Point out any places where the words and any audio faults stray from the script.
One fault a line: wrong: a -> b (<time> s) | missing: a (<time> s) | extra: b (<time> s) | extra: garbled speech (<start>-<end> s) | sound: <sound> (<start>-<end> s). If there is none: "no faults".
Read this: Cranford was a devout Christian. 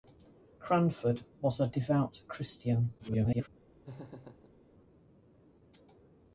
extra: garbled speech (3.0-3.5 s)
sound: laugh (3.9-4.6 s)